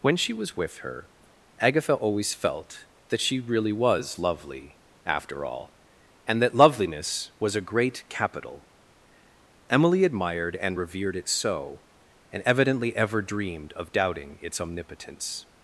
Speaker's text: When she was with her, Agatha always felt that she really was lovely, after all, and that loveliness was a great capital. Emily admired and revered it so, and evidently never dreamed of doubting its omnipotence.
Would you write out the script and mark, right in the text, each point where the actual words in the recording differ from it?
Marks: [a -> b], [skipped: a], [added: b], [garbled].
When she was with her, Agatha always felt that she really was lovely, after all, and that loveliness was a great capital. Emily admired and revered it so, and evidently [never -> ever] dreamed of doubting its omnipotence.